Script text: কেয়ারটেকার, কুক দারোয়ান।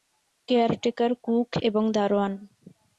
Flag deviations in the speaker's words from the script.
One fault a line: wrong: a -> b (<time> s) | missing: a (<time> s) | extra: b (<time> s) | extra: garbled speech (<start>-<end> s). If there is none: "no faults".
extra: এবং (1.6 s)